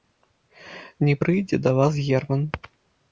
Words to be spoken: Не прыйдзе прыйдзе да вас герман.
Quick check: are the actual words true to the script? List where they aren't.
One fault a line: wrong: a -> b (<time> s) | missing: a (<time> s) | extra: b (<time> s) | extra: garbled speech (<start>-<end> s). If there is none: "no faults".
missing: прыйдзе (1.6 s)